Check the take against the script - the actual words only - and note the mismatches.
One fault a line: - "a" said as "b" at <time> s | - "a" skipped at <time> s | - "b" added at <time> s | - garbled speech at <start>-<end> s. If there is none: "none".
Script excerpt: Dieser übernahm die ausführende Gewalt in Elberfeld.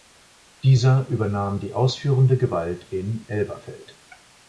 none